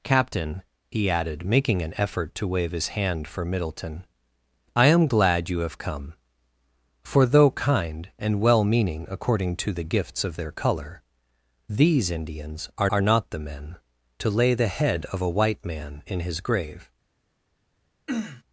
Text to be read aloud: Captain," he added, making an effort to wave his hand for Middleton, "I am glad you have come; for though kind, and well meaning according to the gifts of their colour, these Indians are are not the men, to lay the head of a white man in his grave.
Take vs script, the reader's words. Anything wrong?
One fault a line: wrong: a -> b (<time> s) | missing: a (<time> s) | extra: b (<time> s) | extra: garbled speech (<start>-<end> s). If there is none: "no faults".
no faults